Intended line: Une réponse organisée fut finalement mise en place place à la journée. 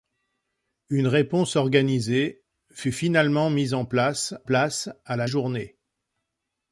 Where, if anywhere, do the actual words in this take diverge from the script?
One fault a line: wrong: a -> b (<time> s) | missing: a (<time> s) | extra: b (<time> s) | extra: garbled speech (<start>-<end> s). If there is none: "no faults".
no faults